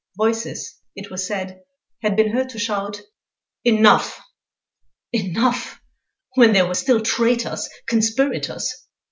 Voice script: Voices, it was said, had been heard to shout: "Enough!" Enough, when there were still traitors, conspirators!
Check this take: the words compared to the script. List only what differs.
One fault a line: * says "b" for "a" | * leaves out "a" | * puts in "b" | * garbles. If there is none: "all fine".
all fine